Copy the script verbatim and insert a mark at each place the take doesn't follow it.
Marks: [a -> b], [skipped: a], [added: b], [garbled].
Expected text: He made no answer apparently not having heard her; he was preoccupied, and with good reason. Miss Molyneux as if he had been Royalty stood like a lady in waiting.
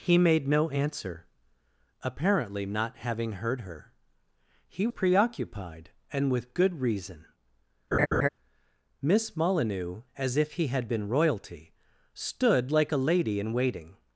He made no answer apparently not having heard her; he [skipped: was] preoccupied, and with good reason. Miss Molyneux as if he had been Royalty stood like a lady in waiting.